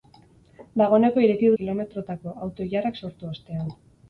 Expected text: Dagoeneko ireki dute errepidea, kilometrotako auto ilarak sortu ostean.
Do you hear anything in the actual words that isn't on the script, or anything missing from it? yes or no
yes